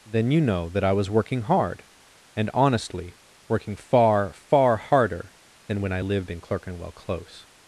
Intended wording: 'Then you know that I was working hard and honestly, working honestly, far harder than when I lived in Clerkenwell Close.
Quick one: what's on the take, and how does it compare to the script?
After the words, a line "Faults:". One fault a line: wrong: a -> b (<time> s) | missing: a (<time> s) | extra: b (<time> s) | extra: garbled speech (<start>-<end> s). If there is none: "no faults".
'Then you know that I was working hard and honestly, working far, far harder than when I lived in Clerkenwell Close.
Faults:
wrong: honestly -> far (3.8 s)